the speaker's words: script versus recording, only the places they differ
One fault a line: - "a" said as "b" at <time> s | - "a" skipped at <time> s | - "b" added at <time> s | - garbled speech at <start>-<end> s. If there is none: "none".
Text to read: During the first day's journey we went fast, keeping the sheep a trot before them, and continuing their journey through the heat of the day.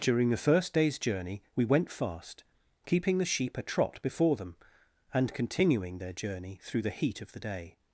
none